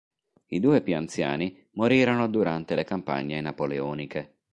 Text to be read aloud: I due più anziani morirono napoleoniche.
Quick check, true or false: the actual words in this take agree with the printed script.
false